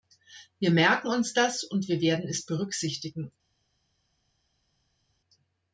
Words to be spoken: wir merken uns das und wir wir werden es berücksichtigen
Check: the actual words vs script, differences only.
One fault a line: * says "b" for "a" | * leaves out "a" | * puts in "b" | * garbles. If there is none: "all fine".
* leaves out "wir"